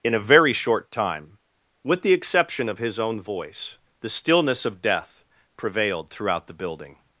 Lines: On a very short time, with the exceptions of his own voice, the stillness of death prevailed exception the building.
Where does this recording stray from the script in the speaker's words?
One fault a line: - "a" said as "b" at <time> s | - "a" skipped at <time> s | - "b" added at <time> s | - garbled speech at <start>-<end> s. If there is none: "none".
- "On" said as "In" at 0.0 s
- "exceptions" said as "exception" at 2.1 s
- "exception" said as "throughout" at 6.1 s